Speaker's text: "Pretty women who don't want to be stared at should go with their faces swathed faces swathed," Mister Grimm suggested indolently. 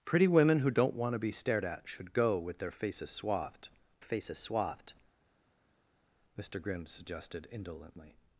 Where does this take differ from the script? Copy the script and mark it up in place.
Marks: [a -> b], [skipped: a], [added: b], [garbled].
"Pretty women who don't want to be stared at should go with their faces swathed faces swathed," Mister Grimm suggested indolently.